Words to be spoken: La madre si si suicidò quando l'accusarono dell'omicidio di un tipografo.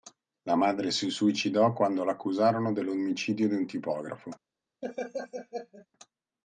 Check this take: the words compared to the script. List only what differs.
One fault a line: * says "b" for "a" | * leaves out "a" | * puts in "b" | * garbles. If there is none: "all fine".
* leaves out "si"